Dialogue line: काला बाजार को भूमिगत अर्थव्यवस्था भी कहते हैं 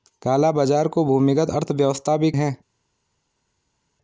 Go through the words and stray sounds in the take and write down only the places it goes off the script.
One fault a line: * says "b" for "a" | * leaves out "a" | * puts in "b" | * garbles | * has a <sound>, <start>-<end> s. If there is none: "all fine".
* leaves out "कहते"